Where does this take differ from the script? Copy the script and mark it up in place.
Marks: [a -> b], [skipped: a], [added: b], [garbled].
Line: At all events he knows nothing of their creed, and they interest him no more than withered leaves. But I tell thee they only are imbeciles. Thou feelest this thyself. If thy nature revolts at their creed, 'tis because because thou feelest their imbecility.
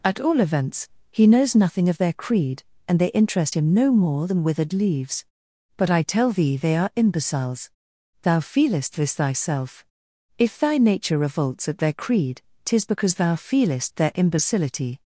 At all events he knows nothing of their creed, and they interest him no more than withered leaves. But I tell thee they [skipped: only] are imbeciles. Thou feelest this thyself. If thy nature revolts at their creed, 'tis because [skipped: because] thou feelest their imbecility.